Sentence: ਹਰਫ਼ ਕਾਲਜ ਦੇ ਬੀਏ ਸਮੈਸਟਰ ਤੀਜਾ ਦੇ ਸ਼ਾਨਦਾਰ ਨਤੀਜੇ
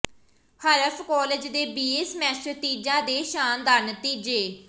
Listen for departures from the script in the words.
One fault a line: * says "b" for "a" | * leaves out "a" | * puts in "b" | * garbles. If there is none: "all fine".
all fine